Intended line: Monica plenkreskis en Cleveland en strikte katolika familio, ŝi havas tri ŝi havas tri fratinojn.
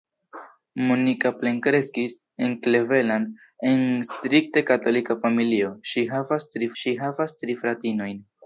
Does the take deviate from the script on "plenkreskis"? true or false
false